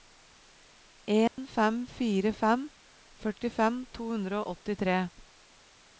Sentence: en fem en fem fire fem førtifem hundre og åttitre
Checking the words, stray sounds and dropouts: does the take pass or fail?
fail